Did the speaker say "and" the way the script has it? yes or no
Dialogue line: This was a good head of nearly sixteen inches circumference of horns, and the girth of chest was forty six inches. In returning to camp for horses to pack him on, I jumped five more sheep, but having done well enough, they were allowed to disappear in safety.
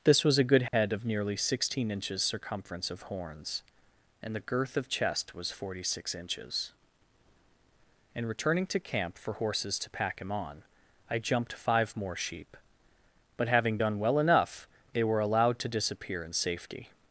yes